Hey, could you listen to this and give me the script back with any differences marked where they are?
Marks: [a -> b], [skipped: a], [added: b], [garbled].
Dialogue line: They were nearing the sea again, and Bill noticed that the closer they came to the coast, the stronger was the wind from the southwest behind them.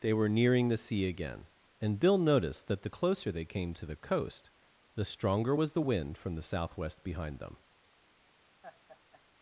They were nearing the sea again, and Bill noticed that the closer they came to the coast, the stronger was the wind from the southwest behind them.